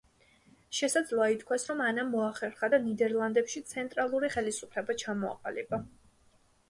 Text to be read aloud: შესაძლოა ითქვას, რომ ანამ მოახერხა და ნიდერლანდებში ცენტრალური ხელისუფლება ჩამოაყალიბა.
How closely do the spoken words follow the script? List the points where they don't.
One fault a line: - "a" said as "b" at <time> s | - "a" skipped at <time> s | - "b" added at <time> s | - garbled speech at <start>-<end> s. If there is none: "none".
none